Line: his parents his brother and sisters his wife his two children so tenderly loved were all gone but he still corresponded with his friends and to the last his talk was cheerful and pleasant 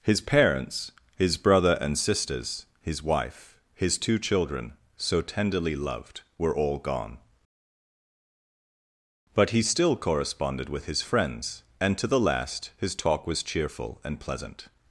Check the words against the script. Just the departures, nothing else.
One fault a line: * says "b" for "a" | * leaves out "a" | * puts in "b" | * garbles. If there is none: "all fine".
all fine